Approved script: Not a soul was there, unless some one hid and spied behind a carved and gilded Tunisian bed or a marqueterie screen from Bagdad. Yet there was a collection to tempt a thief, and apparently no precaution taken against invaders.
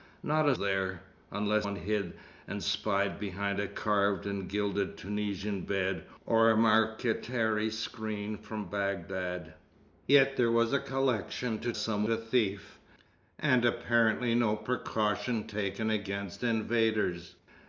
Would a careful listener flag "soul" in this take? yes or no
yes